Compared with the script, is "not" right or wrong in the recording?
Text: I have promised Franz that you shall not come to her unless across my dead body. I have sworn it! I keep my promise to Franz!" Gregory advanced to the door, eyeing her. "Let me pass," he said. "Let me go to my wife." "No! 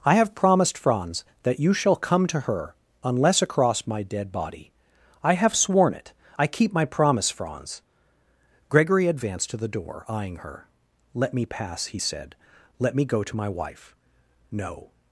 wrong